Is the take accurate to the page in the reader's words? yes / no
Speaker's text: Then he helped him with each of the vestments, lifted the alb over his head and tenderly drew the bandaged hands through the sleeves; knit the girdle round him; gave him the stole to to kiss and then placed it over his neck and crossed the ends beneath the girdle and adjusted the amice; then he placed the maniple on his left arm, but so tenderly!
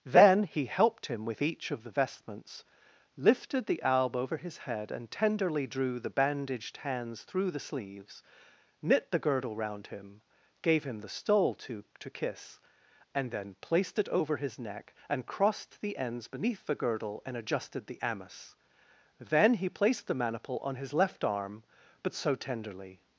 yes